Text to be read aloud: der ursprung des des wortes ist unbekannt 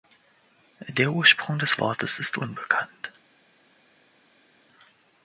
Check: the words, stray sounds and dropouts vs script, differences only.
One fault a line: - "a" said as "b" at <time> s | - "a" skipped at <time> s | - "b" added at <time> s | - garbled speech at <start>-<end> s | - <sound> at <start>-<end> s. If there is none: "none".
- "des" skipped at 1.8 s